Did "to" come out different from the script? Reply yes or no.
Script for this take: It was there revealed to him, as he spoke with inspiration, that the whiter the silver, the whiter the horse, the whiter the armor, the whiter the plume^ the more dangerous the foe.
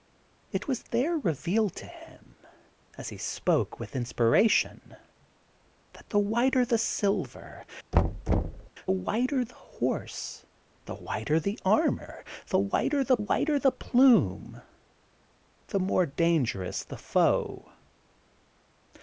no